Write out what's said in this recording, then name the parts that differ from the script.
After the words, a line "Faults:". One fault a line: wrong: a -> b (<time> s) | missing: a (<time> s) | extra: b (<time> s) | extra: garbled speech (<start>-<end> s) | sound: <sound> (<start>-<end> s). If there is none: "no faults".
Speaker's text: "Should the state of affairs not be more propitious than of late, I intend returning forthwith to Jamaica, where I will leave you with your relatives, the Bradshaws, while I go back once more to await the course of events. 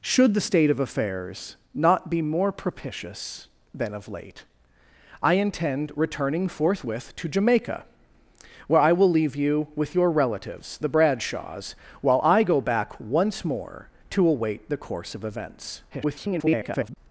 "Should the state of affairs not be more propitious than of late, I intend returning forthwith to Jamaica, where I will leave you with your relatives, the Bradshaws, while I go back once more to await the course of events. [garbled]
Faults:
extra: garbled speech (15.9-17.0 s)